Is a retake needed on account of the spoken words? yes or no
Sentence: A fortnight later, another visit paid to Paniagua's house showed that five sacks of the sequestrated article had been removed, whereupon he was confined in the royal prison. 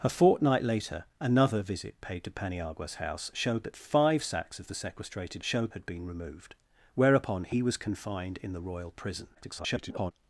yes